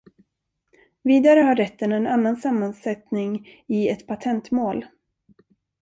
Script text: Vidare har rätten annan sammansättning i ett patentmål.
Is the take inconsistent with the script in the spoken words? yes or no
yes